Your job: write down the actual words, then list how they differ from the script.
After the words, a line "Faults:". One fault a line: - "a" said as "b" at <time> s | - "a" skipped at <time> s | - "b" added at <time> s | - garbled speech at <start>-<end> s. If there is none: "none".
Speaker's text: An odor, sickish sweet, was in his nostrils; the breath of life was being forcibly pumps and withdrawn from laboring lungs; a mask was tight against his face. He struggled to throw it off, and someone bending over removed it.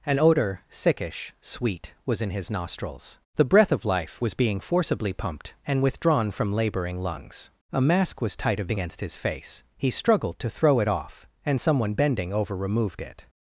An odor, sickish sweet, was in his nostrils; the breath of life was being forcibly pumped and withdrawn from laboring lungs; a mask was tight against his face. He struggled to throw it off, and someone bending over removed it.
Faults:
- "pumps" said as "pumped" at 5.1 s